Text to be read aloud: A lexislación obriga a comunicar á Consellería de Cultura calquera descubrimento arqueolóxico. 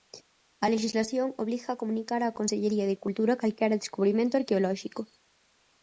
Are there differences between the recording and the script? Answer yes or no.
no